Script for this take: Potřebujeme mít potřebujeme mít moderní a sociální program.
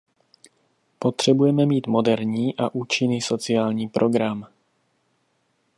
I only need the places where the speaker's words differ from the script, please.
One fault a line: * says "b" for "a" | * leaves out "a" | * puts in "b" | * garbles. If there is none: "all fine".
* leaves out "potřebujeme mít"
* puts in "účinný"